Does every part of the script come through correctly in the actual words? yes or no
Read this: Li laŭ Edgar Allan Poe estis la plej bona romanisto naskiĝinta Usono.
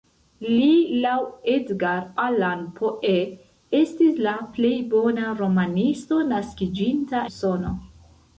yes